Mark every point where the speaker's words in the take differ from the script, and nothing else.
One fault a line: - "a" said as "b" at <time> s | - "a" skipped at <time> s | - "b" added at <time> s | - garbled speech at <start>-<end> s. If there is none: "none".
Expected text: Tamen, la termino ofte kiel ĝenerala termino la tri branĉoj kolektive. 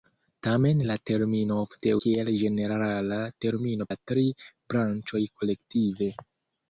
none